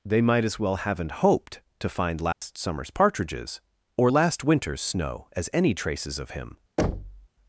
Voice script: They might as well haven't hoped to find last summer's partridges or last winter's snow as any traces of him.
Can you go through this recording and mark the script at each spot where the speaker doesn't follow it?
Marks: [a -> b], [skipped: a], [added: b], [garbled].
They might as well haven't hoped to find last summer's partridges or last winter's snow as any traces of him.